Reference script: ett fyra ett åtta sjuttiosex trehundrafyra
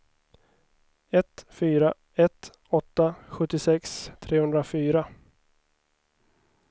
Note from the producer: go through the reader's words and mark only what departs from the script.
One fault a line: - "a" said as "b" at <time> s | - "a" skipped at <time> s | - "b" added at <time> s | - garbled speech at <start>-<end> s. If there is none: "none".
none